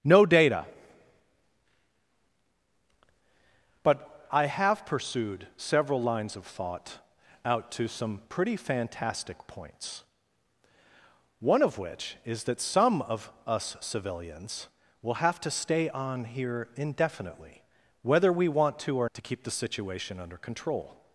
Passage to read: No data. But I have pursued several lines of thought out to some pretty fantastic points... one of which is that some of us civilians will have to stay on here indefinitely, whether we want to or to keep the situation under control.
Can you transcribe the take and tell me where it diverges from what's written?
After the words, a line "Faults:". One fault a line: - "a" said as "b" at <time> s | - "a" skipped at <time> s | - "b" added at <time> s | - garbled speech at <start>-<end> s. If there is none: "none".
No data. But I have pursued several lines of thought out to some pretty fantastic points... one of which is that some of us civilians will have to stay on here indefinitely, whether we want to or to keep the situation under control.
Faults:
none